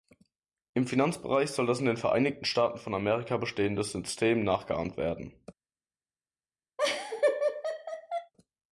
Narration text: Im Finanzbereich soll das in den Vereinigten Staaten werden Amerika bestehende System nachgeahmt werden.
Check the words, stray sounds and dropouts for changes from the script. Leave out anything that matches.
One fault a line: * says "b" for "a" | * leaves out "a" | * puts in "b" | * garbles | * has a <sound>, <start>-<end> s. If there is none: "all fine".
* says "von" for "werden"
* has a laugh, 6.8-8.3 s